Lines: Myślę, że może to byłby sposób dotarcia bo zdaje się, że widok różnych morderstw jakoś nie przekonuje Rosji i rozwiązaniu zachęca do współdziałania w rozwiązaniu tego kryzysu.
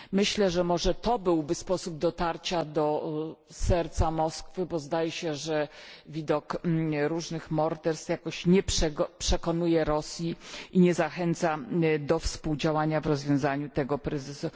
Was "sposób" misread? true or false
false